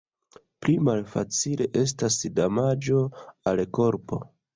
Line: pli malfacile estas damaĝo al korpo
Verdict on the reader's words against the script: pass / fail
pass